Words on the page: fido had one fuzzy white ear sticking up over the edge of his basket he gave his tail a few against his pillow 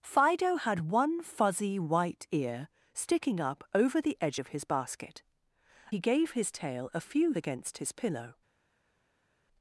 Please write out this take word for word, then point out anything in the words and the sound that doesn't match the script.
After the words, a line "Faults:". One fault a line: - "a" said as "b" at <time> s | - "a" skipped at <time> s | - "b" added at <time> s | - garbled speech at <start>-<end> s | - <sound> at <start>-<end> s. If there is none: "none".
fido had one fuzzy white ear sticking up over the edge of his basket he gave his tail a few against his pillow
Faults:
none